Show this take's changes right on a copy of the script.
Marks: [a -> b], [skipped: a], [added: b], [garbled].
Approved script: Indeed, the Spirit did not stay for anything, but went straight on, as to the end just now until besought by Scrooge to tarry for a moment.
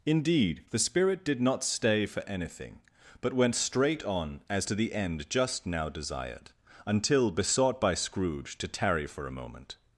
Indeed, the Spirit did not stay for anything, but went straight on, as to the end just now [added: desired] until besought by Scrooge to tarry for a moment.